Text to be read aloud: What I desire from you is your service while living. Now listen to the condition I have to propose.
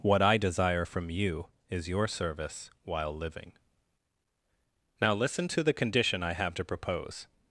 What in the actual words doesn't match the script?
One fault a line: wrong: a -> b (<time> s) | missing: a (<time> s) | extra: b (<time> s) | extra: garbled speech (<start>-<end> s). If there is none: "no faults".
no faults